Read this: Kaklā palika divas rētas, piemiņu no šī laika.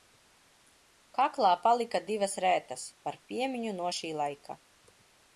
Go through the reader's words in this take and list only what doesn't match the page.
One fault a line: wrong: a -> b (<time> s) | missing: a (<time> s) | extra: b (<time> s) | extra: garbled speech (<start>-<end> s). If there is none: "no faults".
extra: par (3.1 s)